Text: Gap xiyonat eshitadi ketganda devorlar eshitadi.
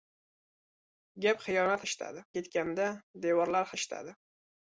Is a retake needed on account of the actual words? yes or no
no